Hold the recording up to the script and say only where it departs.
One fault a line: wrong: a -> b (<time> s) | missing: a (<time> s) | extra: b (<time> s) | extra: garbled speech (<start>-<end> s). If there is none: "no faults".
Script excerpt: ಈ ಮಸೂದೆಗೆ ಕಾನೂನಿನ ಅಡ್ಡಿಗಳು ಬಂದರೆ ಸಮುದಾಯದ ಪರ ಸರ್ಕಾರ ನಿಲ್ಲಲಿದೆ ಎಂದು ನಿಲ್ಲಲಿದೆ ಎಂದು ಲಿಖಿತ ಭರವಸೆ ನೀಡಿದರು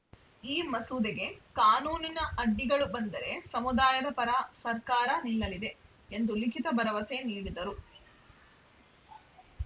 missing: ನಿಲ್ಲಲಿದೆ ಎಂದು (6.3 s)